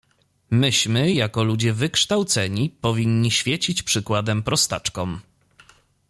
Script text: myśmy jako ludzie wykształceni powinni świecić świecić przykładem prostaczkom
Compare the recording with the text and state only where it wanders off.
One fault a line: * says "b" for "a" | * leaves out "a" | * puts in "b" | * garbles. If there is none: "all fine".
* leaves out "świecić"